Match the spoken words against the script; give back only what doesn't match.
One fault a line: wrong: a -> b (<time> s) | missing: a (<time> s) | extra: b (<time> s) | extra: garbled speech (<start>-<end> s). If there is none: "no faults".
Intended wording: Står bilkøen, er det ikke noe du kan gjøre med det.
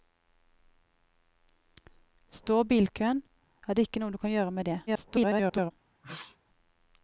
extra: garbled speech (4.9-5.7 s)